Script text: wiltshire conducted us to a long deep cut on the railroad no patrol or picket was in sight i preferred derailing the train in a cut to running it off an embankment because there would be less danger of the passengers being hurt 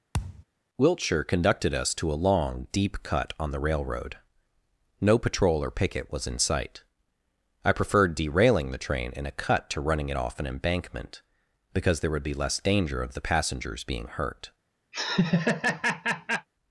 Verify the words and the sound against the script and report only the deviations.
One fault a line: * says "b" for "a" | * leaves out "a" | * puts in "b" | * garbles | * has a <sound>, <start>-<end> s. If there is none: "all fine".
* has a thud, 0.1-0.4 s
* has a laugh, 14.9-16.5 s